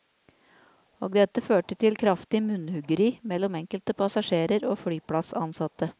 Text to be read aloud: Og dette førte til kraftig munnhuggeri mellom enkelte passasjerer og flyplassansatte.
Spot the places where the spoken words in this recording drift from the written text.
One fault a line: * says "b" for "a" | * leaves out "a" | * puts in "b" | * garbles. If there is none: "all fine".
all fine